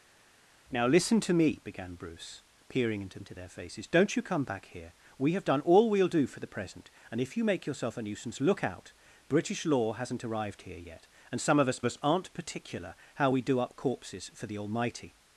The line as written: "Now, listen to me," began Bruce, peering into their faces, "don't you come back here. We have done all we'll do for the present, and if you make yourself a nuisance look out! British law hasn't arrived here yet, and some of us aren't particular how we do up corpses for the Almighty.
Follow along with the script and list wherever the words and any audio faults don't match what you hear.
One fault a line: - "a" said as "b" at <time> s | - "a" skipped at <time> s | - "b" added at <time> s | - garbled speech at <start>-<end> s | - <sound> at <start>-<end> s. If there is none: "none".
- "into" added at 3.2 s
- "us" added at 11.8 s